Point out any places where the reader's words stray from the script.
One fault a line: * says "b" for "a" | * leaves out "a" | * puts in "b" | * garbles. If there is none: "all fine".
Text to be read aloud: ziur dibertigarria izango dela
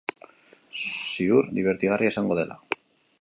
all fine